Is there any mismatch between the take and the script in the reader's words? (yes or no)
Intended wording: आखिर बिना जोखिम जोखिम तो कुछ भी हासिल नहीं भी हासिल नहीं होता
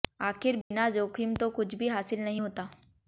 yes